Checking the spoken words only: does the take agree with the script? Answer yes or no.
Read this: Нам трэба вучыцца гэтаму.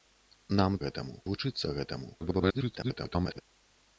no